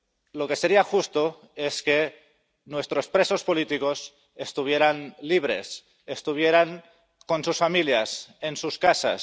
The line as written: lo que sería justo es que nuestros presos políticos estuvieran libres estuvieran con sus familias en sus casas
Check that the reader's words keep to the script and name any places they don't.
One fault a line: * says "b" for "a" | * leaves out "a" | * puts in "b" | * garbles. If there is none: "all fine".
all fine